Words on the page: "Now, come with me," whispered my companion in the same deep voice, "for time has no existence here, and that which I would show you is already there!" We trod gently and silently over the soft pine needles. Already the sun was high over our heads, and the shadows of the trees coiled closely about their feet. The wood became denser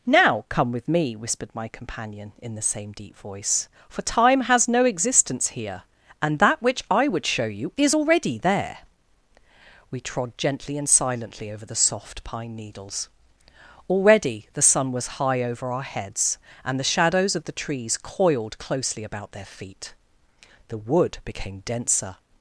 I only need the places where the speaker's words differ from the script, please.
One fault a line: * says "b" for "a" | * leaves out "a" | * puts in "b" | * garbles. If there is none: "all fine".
all fine